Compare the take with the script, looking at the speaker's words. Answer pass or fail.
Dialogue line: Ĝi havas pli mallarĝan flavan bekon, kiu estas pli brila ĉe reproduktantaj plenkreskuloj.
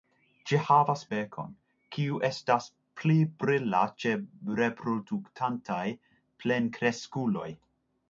fail